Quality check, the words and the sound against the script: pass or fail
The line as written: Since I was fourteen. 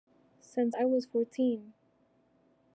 pass